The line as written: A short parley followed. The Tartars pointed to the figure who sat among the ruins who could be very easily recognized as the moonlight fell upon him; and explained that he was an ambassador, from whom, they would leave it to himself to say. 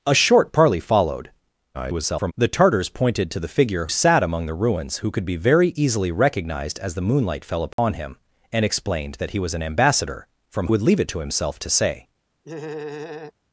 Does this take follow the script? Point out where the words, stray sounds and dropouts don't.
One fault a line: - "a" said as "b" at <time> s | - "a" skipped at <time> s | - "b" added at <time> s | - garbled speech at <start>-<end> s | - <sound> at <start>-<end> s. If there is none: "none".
- garbled speech at 1.7-2.3 s
- "who" skipped at 3.9 s
- dropout at 7.7-7.8 s
- "whom they" skipped at 10.7 s
- laugh at 12.4-13.3 s